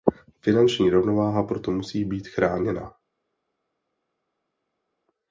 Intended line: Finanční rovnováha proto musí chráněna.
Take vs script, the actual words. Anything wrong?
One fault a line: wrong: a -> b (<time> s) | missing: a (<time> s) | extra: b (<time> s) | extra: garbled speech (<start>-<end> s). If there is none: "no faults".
extra: být (2.1 s)